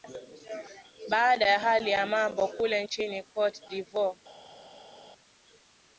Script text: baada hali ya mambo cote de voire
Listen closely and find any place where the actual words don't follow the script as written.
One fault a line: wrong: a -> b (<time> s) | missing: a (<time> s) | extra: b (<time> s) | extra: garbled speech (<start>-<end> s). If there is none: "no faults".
extra: ya (1.5 s)
extra: kule nchini (2.5 s)